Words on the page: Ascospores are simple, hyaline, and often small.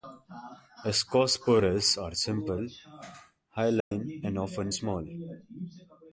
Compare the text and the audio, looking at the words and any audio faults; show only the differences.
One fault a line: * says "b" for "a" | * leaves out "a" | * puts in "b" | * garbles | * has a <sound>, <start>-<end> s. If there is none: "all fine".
* has a dropout, 3.8-3.9 s